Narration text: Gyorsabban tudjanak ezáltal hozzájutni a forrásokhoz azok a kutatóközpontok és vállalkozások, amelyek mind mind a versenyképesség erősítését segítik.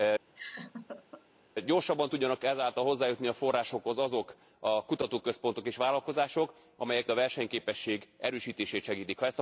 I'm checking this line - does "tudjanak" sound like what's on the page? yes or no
yes